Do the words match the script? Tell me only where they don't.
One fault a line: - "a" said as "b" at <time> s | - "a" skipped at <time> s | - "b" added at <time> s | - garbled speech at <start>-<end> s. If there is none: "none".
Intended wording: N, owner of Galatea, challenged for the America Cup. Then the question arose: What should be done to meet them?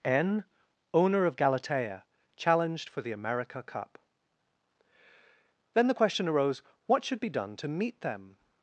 none